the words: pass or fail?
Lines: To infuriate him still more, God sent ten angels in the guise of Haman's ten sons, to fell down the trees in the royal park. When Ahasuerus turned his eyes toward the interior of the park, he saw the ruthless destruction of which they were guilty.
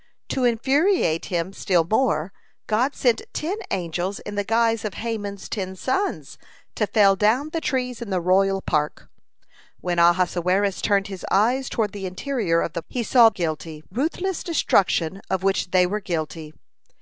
fail